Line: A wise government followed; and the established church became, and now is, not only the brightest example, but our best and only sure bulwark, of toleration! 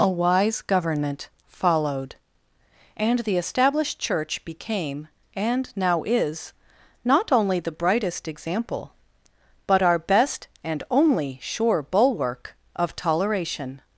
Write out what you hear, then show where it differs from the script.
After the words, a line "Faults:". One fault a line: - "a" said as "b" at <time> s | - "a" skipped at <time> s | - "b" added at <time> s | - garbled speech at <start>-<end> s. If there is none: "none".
A wise government followed; and the established church became, and now is, not only the brightest example, but our best and only sure bulwark, of toleration!
Faults:
none